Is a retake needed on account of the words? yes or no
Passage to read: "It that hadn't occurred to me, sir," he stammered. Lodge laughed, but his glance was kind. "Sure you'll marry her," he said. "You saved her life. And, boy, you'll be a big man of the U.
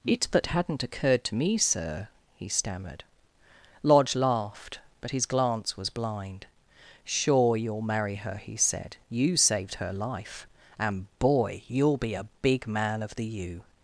yes